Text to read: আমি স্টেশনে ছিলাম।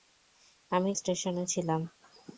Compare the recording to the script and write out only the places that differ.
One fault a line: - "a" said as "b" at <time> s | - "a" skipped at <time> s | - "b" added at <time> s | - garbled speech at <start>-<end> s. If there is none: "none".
none